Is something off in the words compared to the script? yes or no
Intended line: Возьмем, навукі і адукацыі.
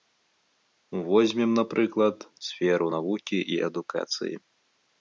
yes